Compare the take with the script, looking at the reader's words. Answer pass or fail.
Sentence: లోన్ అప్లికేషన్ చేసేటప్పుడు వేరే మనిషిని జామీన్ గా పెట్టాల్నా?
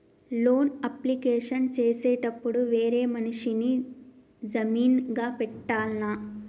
pass